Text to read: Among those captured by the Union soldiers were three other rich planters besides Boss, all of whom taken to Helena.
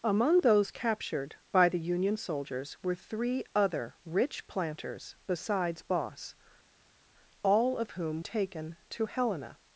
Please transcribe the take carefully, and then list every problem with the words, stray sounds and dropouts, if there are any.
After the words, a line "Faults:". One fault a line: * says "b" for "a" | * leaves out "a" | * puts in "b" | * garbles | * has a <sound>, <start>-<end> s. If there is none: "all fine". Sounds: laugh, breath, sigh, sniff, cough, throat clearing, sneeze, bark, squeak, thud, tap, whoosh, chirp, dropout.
Among those captured by the Union soldiers were three other rich planters besides Boss, all of whom taken to Helena.
Faults:
all fine